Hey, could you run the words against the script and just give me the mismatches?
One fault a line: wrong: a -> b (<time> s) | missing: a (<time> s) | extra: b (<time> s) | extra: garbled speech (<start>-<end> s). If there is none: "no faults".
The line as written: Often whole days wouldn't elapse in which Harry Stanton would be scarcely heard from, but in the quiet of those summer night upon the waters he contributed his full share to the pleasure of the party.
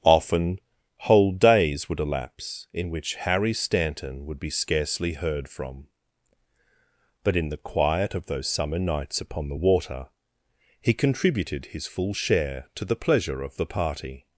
wrong: wouldn't -> would (1.9 s)
wrong: night -> nights (8.8 s)
wrong: waters -> water (9.5 s)